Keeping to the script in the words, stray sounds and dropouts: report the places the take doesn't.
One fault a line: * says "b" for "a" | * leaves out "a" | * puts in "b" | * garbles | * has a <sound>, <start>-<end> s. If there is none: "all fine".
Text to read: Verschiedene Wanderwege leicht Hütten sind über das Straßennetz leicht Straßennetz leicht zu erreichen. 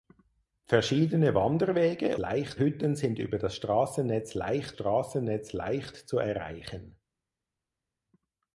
all fine